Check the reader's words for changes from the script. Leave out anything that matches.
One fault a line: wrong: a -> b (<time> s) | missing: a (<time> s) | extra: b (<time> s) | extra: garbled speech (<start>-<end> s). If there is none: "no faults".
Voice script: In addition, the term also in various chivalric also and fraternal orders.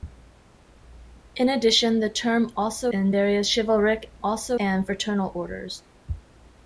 no faults